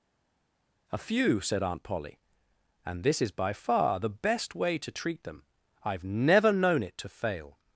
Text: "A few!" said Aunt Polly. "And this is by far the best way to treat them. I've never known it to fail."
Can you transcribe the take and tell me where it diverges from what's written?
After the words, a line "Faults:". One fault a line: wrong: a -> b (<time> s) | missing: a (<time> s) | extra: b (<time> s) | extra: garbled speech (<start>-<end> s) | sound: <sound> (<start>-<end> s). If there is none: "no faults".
"A few!" said Aunt Polly. "And this is by far the best way to treat them. I've never known it to fail."
Faults:
no faults